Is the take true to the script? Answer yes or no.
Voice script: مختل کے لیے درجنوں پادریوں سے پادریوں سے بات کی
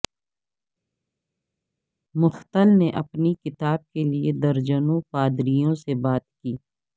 no